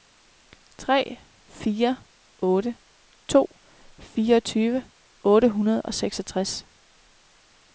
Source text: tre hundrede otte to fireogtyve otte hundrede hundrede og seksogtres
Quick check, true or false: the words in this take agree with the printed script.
false